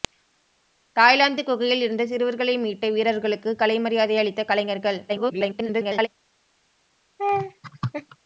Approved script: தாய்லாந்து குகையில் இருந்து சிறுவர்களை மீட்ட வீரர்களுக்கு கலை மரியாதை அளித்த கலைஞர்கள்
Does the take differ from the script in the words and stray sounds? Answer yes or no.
yes